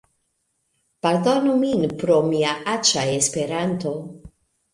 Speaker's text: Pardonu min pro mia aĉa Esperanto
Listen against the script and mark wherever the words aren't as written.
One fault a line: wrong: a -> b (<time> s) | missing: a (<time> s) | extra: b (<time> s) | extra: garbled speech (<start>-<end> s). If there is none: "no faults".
no faults